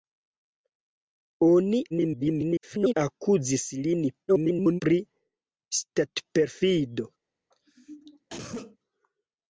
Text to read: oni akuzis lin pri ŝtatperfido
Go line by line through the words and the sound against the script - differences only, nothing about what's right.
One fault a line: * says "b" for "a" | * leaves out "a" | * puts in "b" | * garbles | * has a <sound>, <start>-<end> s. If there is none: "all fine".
* garbles
* garbles
* has a cough, 7.5-8.8 s